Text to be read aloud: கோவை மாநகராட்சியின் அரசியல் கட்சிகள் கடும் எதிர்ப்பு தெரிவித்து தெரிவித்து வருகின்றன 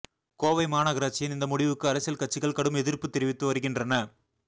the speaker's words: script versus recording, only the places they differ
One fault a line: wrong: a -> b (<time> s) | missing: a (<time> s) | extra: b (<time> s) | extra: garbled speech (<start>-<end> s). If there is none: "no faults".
extra: இந்த முடிவுக்கு (1.4 s)
missing: தெரிவித்து (3.5 s)